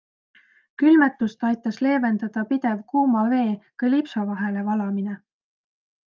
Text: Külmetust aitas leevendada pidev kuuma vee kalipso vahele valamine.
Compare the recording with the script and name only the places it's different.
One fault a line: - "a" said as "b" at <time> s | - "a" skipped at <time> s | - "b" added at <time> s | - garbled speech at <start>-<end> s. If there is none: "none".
none